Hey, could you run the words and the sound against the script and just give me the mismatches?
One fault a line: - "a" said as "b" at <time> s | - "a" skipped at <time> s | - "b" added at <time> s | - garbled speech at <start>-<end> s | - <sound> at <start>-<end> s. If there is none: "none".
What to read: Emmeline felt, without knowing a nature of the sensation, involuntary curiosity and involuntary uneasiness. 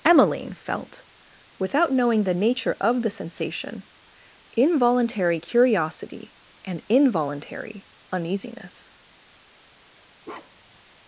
- "a" said as "the" at 2.2 s
- bark at 10.2-10.8 s